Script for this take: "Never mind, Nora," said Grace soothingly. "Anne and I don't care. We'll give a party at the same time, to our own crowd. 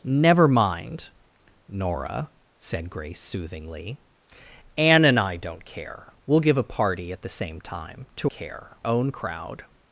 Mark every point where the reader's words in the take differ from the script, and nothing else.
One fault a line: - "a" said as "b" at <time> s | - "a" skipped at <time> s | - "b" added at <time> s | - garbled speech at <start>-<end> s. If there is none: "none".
- "our" said as "care" at 8.3 s